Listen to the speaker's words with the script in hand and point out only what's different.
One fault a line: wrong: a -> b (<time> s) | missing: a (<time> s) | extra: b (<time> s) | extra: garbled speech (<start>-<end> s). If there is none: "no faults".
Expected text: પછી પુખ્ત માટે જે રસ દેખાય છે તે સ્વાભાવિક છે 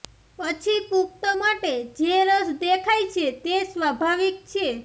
no faults